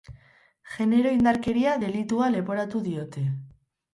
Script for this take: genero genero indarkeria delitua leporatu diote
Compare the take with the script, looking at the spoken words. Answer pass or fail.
fail